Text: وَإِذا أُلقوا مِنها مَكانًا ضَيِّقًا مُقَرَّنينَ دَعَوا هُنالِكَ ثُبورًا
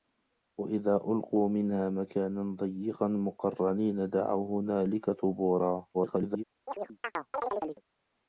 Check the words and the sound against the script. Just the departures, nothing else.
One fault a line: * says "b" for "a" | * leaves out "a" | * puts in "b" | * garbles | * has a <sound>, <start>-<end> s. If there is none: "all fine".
* garbles
* has a chirp, 6.7-7.8 s